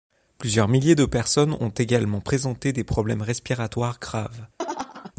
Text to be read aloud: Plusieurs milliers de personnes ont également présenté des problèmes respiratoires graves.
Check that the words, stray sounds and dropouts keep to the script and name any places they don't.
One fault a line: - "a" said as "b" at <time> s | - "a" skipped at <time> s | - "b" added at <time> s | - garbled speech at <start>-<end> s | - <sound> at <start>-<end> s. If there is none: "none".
- laugh at 4.6-5.1 s